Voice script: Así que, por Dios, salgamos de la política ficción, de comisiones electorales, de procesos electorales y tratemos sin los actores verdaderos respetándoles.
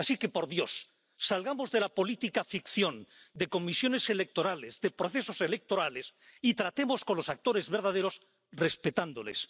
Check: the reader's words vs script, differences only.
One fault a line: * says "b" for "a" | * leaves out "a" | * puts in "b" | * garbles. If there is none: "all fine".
* says "con" for "sin"